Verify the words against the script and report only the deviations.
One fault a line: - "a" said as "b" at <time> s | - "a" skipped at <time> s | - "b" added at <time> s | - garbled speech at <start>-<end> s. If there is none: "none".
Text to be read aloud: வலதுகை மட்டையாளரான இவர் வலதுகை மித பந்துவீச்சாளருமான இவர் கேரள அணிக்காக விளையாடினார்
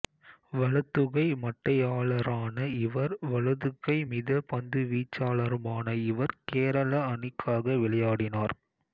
none